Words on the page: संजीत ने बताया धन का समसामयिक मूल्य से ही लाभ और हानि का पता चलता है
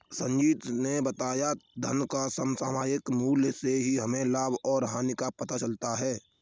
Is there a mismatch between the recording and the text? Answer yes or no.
yes